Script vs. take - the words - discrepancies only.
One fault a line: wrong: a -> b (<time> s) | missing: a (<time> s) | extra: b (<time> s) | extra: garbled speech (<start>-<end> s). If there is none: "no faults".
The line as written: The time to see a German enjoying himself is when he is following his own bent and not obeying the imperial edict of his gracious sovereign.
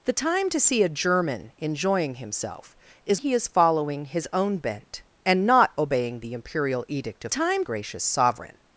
missing: when (3.2 s)
wrong: his -> time (7.3 s)